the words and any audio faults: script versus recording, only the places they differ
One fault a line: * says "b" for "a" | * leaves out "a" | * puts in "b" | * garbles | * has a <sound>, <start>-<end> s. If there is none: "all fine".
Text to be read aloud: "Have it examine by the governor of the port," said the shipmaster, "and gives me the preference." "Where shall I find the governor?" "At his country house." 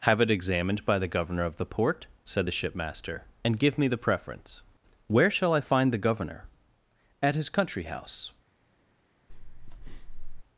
* says "examined" for "examine"
* says "give" for "gives"
* has a breath, 9.3-10.4 s